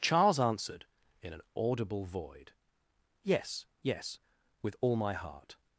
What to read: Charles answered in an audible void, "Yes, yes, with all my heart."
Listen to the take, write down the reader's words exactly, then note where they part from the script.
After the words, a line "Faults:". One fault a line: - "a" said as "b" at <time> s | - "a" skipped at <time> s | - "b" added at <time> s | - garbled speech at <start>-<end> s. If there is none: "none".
Charles answered in an audible void, "Yes, yes, with all my heart."
Faults:
none